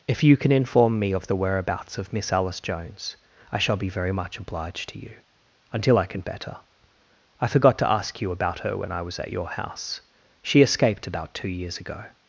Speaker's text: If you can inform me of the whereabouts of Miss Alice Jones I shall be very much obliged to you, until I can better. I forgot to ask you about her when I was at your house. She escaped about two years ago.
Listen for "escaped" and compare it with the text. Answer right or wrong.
right